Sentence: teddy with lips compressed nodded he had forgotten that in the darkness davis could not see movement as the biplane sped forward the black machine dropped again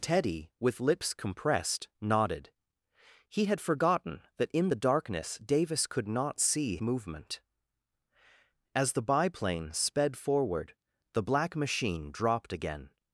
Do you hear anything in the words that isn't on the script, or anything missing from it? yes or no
no